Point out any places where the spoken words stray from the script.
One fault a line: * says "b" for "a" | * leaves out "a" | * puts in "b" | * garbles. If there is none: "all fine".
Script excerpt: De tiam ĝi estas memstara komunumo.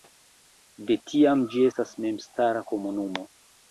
all fine